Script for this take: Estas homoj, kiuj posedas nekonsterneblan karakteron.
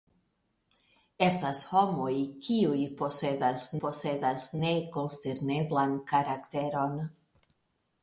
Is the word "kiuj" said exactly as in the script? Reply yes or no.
yes